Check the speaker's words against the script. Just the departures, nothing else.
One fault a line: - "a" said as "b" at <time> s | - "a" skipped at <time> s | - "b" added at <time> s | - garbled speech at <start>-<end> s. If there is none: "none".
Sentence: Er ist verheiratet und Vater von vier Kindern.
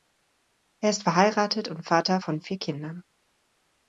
none